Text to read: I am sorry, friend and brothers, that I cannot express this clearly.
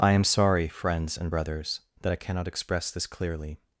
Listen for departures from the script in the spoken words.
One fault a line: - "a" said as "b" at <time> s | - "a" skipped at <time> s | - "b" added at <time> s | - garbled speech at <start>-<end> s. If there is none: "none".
- "friend" said as "friends" at 0.7 s